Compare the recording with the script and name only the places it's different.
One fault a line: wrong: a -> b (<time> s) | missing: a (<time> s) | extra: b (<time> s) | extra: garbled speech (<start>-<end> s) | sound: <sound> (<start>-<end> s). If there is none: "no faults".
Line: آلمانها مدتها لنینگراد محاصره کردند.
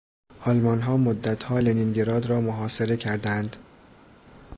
extra: را (2.3 s)